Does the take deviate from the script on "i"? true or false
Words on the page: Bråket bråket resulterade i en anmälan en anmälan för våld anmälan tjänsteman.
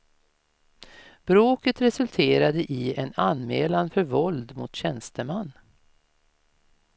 false